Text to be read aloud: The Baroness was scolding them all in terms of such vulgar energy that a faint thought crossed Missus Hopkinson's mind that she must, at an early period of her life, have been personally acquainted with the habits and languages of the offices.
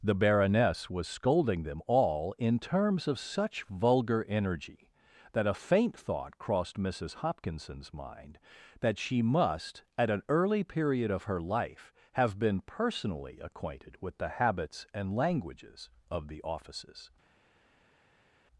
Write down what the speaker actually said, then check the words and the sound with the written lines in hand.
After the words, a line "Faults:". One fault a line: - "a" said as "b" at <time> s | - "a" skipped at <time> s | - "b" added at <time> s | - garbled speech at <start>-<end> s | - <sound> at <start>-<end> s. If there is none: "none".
The Baroness was scolding them all in terms of such vulgar energy that a faint thought crossed Missus Hopkinson's mind that she must, at an early period of her life, have been personally acquainted with the habits and languages of the offices.
Faults:
none